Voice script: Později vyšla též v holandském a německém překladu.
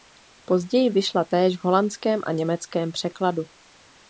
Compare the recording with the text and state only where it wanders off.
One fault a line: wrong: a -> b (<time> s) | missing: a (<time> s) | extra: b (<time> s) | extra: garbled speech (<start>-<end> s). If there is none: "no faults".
no faults